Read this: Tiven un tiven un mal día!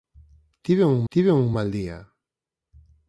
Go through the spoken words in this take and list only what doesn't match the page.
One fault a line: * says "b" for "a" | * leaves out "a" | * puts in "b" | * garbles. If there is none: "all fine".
all fine